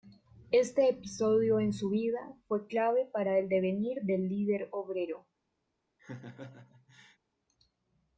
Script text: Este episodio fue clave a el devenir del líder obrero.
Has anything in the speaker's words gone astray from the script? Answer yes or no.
yes